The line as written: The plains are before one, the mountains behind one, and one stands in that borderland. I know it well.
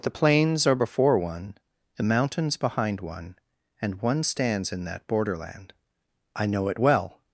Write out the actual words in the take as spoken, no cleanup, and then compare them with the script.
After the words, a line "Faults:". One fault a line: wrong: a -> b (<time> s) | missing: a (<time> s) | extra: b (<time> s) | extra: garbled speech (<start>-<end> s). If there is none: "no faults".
The plains are before one, the mountains behind one, and one stands in that borderland. I know it well.
Faults:
no faults